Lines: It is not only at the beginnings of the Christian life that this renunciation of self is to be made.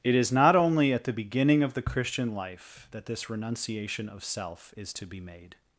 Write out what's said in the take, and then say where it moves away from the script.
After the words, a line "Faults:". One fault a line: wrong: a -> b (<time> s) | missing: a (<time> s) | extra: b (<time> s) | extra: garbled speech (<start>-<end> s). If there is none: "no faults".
It is not only at the beginning of the Christian life that this renunciation of self is to be made.
Faults:
wrong: beginnings -> beginning (1.1 s)